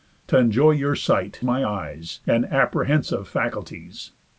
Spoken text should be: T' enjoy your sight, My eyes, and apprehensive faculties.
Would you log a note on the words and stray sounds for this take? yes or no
no